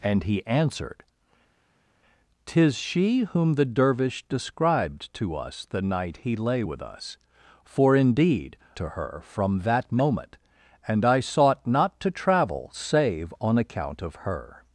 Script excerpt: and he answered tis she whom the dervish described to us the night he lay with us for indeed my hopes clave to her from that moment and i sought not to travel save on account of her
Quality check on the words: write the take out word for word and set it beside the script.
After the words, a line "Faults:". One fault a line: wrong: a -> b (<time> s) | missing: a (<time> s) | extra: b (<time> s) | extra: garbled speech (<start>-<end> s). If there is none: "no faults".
and he answered tis she whom the dervish described to us the night he lay with us for indeed to her from that moment and i sought not to travel save on account of her
Faults:
missing: my hopes clave (8.6 s)